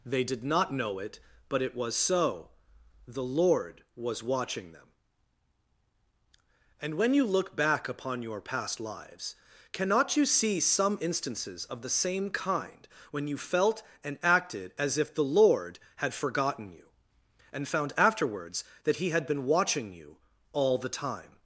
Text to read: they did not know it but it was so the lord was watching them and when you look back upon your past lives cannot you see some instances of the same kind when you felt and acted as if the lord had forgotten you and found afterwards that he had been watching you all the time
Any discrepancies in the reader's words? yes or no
no